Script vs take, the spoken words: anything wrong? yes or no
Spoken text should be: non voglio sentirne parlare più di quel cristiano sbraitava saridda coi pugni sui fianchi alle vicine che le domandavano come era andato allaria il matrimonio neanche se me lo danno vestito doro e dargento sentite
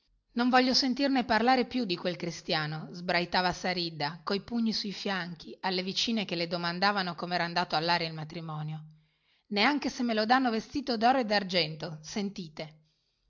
no